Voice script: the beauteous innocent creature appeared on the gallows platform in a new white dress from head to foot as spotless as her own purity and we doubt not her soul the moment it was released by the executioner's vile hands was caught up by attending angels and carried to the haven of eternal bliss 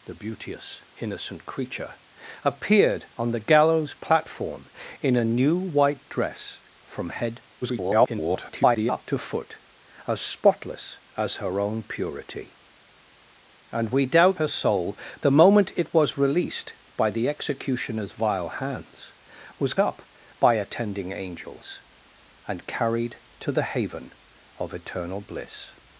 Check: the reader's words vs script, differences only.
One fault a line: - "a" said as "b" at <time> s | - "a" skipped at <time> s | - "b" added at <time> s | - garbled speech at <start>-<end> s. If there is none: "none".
- garbled speech at 7.6-9.0 s
- "not" skipped at 14.4 s
- "caught" skipped at 19.7 s